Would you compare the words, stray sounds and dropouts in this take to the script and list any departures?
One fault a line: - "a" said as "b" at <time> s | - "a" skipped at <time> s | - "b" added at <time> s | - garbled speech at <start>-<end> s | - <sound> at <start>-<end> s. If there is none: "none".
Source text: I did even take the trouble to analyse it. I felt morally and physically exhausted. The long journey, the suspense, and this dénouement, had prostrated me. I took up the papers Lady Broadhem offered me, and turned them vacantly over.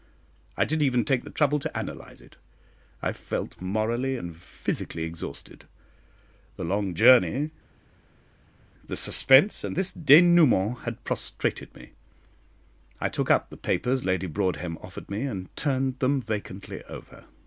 none